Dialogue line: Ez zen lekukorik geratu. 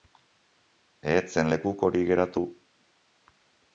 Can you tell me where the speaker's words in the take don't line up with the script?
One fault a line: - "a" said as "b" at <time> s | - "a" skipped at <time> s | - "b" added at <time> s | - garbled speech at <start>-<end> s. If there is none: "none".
none